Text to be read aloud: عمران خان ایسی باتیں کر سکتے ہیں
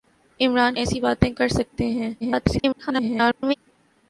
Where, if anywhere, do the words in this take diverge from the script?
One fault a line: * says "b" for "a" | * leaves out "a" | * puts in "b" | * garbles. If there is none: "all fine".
* leaves out "خان"
* garbles